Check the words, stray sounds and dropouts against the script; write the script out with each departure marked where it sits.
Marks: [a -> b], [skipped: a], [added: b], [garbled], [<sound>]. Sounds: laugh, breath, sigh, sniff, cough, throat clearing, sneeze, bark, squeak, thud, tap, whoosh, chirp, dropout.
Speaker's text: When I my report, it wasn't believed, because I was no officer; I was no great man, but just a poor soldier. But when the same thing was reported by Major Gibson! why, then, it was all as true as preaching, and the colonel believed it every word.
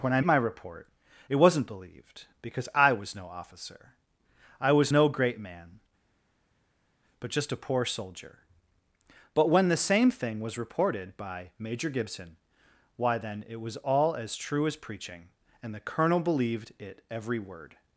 When I my report, it wasn't believed, because I was no officer; I was no great man, but just a poor soldier. But when the same thing was reported by Major Gibson! why, then, it was all as true as preaching, and the colonel believed it every word.